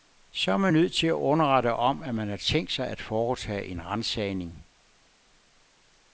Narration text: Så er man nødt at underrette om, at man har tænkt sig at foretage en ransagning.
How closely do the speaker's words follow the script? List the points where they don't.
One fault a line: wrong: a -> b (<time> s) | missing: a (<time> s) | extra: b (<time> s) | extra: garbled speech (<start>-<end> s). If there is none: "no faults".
extra: til (0.9 s)